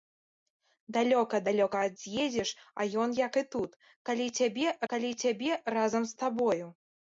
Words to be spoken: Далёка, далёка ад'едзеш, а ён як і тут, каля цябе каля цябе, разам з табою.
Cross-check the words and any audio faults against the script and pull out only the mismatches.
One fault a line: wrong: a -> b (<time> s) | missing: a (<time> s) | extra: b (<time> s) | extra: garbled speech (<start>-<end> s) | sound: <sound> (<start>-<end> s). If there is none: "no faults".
no faults